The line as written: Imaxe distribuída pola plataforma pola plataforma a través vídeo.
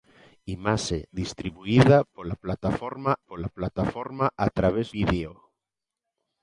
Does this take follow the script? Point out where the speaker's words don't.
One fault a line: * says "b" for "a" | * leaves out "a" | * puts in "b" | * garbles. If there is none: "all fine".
all fine